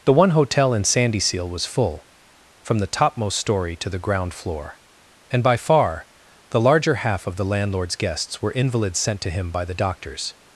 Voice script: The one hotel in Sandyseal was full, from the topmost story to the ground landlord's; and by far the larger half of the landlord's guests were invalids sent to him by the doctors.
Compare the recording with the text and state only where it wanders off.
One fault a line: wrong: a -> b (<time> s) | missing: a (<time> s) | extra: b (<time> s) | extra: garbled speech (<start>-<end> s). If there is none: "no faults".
wrong: landlord's -> floor (4.3 s)